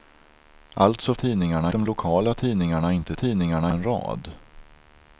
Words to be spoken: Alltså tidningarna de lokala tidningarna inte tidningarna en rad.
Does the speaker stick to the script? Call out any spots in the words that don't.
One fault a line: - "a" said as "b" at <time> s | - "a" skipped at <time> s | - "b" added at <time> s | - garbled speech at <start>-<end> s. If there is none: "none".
none